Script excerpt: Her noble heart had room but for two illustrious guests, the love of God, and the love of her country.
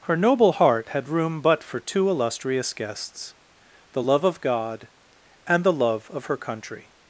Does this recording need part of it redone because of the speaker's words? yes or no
no